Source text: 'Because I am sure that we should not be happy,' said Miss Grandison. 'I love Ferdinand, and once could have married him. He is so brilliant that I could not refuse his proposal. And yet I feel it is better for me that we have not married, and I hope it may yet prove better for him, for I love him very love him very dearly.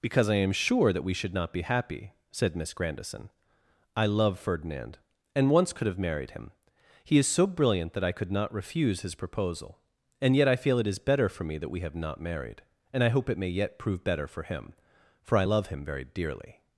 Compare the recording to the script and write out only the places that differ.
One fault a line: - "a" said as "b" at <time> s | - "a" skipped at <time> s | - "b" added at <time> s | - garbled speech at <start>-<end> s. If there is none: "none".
- "love him very" skipped at 16.0 s